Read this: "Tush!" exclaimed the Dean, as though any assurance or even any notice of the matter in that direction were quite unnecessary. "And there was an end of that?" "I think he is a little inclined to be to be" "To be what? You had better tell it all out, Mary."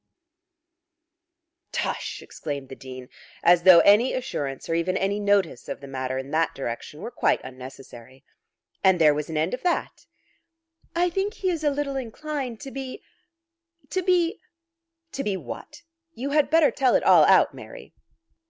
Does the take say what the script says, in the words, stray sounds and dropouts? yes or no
yes